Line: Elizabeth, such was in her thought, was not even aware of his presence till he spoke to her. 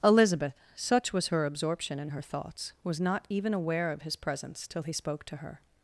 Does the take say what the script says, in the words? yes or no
no